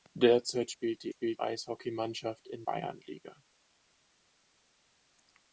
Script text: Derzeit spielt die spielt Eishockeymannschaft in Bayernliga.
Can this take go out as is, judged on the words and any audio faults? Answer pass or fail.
pass